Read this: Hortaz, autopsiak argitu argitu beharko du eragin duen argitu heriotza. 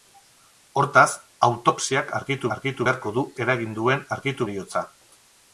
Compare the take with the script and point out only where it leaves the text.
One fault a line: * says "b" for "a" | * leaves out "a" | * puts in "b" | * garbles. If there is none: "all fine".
all fine